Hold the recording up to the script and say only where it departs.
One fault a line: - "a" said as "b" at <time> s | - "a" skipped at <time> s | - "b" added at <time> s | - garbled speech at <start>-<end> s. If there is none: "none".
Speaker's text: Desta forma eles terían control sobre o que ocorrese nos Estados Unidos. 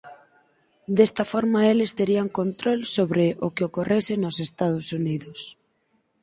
none